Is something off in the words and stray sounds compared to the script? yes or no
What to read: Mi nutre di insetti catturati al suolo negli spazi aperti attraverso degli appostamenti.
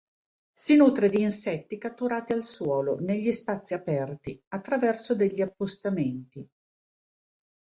yes